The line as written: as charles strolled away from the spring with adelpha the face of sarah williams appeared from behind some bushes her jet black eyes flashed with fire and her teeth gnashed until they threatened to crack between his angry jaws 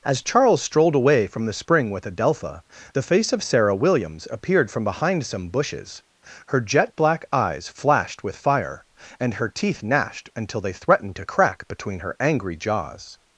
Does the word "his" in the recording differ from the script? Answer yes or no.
yes